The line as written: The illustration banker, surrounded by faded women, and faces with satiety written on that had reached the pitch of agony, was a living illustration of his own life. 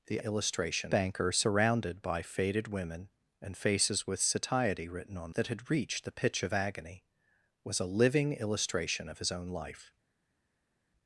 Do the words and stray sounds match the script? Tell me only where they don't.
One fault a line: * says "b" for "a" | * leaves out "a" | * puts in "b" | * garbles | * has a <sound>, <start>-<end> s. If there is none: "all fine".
all fine